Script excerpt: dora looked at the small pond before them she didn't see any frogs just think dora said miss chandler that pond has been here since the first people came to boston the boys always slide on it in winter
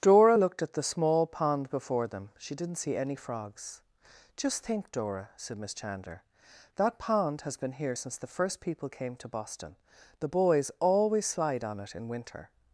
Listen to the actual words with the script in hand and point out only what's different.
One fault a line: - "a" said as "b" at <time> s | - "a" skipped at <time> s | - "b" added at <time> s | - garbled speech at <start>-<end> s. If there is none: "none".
none